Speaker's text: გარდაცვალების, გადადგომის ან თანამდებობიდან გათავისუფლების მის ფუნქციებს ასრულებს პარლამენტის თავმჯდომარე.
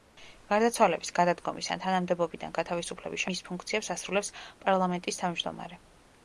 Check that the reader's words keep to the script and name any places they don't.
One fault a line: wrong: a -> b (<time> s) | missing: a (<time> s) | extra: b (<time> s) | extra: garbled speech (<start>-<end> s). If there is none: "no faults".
no faults